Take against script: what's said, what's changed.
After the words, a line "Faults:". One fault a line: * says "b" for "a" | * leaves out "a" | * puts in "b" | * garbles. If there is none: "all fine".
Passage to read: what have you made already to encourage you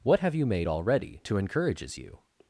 what have you made already to encourages you
Faults:
* says "encourages" for "encourage"